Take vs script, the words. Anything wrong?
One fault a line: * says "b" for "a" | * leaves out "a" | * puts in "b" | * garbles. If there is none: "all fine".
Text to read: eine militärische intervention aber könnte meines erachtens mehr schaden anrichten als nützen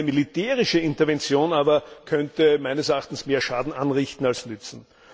all fine